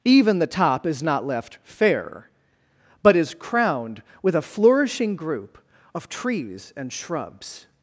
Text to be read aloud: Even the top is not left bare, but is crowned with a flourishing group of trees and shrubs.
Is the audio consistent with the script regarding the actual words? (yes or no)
no